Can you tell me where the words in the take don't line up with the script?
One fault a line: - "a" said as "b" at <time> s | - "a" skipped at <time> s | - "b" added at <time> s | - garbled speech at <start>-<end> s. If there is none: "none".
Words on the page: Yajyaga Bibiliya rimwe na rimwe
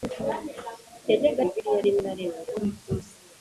none